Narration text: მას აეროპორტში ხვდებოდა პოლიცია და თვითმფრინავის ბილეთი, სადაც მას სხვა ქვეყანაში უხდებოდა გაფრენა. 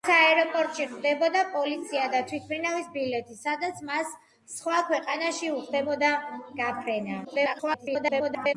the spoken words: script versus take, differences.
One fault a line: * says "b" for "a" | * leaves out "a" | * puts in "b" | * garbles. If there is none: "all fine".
* garbles